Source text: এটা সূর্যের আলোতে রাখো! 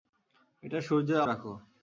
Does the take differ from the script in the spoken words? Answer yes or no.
yes